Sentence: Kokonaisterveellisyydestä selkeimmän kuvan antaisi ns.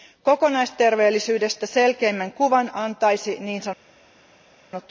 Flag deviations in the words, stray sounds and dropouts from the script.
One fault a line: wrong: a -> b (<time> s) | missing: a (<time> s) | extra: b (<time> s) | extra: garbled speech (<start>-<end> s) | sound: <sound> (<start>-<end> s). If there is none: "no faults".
no faults